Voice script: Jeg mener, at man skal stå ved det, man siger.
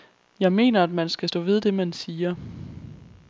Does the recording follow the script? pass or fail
pass